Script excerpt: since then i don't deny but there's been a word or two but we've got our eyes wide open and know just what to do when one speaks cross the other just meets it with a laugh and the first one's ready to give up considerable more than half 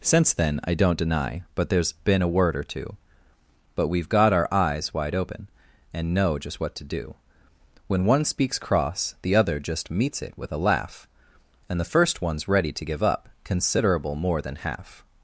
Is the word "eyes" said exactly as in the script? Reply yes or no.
yes